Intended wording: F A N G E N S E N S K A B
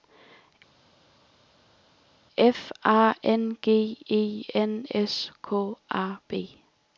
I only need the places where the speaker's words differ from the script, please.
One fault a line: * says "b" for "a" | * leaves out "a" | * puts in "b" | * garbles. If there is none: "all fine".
* leaves out "E N S"